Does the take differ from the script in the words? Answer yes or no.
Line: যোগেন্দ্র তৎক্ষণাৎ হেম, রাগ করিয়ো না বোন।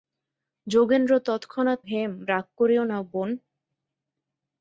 no